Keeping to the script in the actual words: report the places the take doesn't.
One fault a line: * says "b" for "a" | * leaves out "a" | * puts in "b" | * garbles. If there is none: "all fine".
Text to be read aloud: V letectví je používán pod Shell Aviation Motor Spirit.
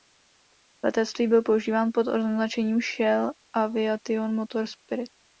* says "byl" for "je"
* puts in "označením"